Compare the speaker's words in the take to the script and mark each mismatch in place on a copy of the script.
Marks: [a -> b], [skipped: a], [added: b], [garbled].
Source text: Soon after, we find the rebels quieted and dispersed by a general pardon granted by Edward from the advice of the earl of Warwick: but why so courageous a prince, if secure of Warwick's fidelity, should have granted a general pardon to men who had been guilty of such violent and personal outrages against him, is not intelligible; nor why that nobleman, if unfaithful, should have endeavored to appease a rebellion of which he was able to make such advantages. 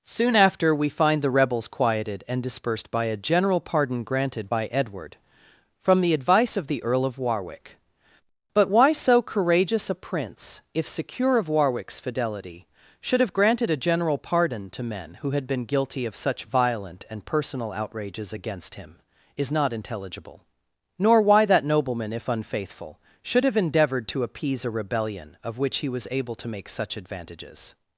Soon after, we find the rebels quieted and dispersed by a general pardon granted by Edward from the advice of the earl of Warwick: but why so courageous a prince, if secure of Warwick's fidelity, should have granted a general pardon to men who had been guilty of such violent and personal outrages against him, is not intelligible; nor why that nobleman, if unfaithful, should have endeavored to appease a rebellion of which he was able to make such advantages.